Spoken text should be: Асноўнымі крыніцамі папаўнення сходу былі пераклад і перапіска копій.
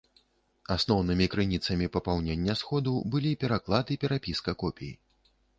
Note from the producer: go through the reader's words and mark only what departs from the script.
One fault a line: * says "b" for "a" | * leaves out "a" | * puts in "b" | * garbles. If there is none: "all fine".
all fine